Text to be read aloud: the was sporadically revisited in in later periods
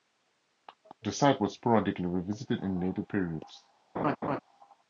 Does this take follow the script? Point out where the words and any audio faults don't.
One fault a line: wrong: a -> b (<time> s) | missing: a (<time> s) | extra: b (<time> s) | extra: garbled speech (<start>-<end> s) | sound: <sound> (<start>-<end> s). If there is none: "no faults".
extra: site (1.1 s)
missing: in (2.8 s)
sound: laugh (3.9-4.4 s)